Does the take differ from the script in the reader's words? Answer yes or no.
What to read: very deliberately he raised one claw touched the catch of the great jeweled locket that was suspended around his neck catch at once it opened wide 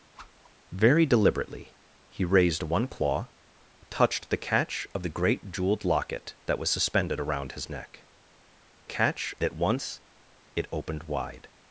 no